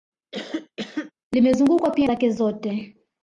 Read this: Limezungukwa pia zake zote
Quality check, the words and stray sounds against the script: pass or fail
fail